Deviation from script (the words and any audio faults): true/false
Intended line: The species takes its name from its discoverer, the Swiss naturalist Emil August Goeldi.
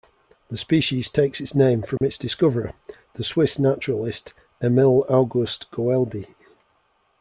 true